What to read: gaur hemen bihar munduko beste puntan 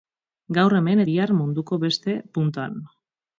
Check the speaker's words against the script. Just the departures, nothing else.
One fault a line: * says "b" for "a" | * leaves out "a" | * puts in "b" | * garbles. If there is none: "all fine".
all fine